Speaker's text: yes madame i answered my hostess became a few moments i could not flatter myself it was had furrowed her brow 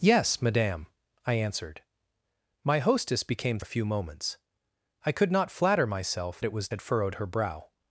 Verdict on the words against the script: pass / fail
pass